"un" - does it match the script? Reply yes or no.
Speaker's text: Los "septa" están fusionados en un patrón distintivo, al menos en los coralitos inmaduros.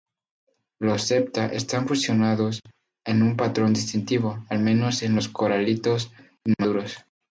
yes